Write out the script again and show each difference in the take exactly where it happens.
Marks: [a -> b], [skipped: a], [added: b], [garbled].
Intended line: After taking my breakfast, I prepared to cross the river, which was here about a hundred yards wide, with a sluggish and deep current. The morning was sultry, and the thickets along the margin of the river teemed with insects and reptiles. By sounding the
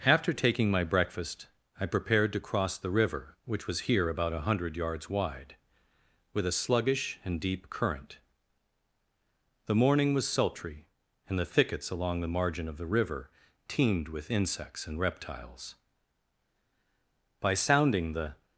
After taking my breakfast, I prepared to cross the river, which was here about a hundred yards wide, with a sluggish and deep current. The morning was sultry, and the thickets along the margin of the river teemed with insects and reptiles. By sounding the